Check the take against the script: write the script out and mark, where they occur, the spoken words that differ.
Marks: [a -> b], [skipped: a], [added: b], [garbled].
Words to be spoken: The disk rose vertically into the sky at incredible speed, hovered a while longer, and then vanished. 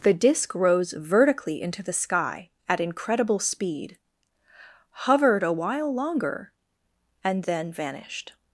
The disk rose vertically into the sky at incredible speed, hovered a while longer, and then vanished.